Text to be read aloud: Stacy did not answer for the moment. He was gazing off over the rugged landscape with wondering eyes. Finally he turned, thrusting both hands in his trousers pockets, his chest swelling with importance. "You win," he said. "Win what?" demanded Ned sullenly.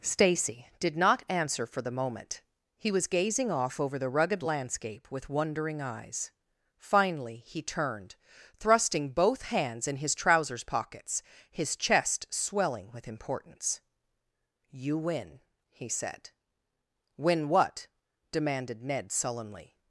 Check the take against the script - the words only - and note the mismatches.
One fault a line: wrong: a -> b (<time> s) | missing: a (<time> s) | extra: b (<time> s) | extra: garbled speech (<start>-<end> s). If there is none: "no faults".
no faults